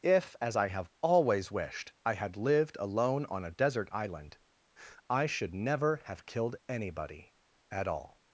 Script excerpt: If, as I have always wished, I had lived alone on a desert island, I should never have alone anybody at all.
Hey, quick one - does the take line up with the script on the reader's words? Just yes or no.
no